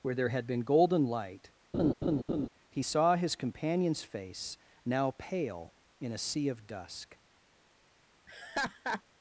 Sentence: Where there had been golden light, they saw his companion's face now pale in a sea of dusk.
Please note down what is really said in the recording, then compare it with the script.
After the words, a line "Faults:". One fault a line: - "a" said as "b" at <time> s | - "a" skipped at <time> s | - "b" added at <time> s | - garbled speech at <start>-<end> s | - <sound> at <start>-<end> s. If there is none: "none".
Where there had been golden light, he saw his companion's face now pale in a sea of dusk.
Faults:
- laugh at 1.7-2.5 s
- "they" said as "he" at 2.7 s
- laugh at 8.3-9.0 s